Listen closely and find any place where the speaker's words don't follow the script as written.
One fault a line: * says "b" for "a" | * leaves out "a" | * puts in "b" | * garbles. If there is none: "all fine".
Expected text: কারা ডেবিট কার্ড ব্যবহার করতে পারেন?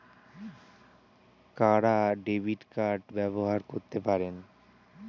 all fine